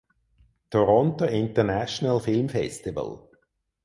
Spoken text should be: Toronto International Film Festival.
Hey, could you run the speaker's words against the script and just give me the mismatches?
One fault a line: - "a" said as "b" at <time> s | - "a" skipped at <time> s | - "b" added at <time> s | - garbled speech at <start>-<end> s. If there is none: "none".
none